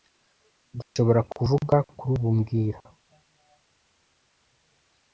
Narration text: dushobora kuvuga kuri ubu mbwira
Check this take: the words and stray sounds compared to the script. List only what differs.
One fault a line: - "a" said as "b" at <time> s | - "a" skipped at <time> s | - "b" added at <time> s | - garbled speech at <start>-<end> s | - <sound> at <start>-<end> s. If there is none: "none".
- dropout at 0.8-1.0 s